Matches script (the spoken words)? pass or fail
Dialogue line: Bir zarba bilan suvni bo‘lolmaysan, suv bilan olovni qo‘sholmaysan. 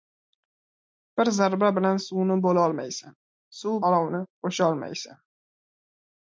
fail